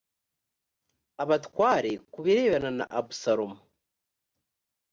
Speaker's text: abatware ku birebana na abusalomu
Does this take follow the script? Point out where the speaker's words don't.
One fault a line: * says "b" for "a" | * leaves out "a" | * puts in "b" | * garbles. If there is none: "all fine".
all fine